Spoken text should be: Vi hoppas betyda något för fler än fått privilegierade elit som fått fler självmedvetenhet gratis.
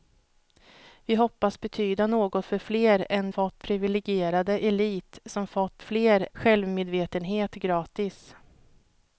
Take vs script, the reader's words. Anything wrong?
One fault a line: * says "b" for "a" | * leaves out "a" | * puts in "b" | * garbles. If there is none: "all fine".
all fine